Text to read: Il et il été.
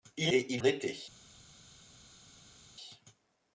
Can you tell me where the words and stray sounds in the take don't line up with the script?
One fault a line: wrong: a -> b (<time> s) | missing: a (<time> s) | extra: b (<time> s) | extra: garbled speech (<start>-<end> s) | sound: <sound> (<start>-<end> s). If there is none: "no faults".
no faults